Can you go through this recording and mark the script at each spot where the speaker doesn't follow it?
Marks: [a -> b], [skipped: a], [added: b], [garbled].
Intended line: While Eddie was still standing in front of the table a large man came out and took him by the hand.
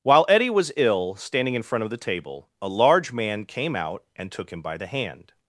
While Eddie was [still -> ill] standing in front of the table a large man came out and took him by the hand.